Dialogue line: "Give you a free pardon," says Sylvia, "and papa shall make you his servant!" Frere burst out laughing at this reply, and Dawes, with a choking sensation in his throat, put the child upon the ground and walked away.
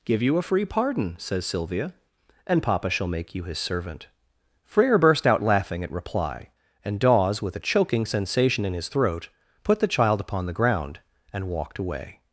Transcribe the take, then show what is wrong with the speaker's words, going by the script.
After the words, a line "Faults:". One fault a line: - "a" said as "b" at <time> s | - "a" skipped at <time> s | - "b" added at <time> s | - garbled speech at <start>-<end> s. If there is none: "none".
"Give you a free pardon," says Sylvia, "and papa shall make you his servant!" Frere burst out laughing at reply, and Dawes, with a choking sensation in his throat, put the child upon the ground and walked away.
Faults:
- "this" skipped at 5.9 s